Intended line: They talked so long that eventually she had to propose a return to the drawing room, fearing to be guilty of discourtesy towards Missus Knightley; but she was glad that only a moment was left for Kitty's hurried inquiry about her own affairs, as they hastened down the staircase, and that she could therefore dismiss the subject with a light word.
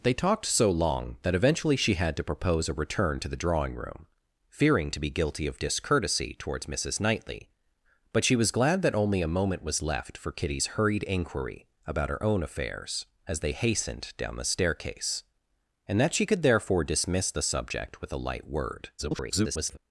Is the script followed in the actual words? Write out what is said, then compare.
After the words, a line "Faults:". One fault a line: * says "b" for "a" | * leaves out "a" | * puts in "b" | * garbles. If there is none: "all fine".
They talked so long that eventually she had to propose a return to the drawing room, fearing to be guilty of discourtesy towards Missus Knightley; but she was glad that only a moment was left for Kitty's hurried inquiry about her own affairs, as they hastened down the staircase, and that she could therefore dismiss the subject with a light word. [garbled]
Faults:
* garbles